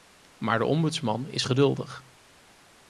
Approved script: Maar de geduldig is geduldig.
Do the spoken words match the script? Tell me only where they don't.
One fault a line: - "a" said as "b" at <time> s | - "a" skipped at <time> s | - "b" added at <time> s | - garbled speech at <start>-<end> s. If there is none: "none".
- "geduldig" said as "ombudsman" at 0.7 s